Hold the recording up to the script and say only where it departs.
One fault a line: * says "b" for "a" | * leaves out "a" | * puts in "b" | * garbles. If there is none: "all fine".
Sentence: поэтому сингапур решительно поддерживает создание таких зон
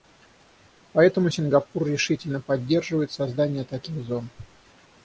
all fine